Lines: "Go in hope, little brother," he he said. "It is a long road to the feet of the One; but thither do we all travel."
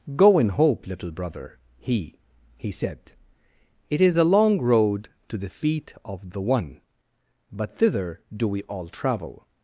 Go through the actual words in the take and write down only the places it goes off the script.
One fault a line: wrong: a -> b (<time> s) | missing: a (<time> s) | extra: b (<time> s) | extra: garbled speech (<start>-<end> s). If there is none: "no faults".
no faults